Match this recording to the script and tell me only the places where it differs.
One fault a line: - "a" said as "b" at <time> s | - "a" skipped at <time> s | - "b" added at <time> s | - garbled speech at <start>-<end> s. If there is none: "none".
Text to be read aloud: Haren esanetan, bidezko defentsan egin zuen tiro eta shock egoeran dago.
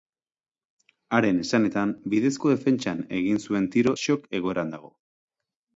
- "eta" skipped at 3.9 s